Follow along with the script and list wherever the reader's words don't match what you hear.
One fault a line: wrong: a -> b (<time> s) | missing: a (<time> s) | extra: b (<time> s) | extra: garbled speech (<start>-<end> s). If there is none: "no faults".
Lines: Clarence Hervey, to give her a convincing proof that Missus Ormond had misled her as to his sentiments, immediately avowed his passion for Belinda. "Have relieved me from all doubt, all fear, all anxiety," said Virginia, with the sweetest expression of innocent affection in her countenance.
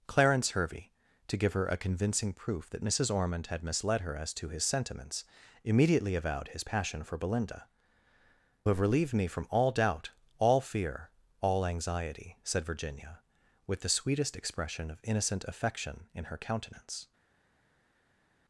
no faults